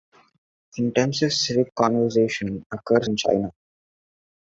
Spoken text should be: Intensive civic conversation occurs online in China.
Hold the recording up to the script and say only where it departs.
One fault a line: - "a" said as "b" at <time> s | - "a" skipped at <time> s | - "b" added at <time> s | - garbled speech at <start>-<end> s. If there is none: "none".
- "online" skipped at 3.1 s